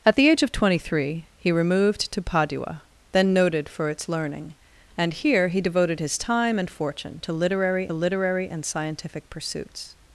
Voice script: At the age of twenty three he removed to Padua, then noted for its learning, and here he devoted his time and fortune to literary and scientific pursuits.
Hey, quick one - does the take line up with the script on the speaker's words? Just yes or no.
no